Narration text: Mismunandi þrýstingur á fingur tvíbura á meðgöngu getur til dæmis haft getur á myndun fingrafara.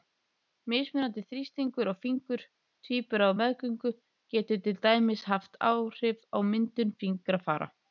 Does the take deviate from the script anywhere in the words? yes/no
yes